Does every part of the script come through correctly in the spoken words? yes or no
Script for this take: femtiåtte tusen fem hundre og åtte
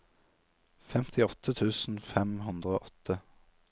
yes